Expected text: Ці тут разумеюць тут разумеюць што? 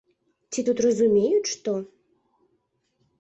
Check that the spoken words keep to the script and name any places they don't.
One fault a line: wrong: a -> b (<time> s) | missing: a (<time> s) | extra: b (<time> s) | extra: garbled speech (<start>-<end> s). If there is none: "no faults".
missing: тут разумеюць (1.5 s)